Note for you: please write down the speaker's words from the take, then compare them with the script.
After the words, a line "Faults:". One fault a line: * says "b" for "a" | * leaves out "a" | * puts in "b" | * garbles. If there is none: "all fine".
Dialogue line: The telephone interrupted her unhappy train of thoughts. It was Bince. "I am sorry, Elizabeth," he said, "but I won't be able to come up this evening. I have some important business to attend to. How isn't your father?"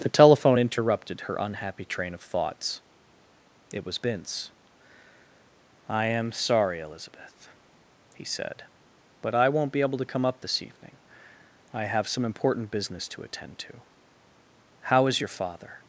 The telephone interrupted her unhappy train of thoughts. It was Bince. "I am sorry, Elizabeth," he said, "but I won't be able to come up this evening. I have some important business to attend to. How is your father?"
Faults:
* says "is" for "isn't"